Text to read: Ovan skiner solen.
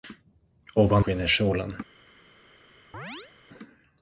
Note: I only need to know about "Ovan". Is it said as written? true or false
true